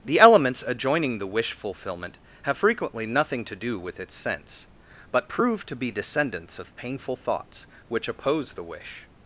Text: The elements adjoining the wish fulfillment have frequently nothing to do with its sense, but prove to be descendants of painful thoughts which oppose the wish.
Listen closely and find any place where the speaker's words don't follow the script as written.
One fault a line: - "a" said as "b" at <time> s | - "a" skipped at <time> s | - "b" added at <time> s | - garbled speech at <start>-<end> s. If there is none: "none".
none